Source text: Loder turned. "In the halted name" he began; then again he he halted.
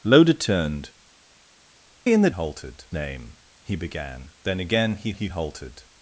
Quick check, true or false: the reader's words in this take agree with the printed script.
true